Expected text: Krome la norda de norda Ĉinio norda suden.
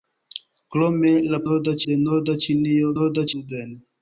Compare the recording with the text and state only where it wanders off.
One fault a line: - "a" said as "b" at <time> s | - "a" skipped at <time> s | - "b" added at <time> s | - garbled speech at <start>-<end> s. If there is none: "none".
none